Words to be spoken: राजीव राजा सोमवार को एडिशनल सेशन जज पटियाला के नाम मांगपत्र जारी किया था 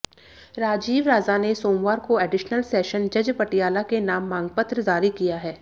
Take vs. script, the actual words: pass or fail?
fail